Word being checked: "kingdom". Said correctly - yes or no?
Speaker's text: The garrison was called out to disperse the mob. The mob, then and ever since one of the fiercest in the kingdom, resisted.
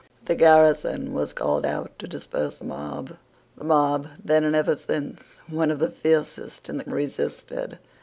no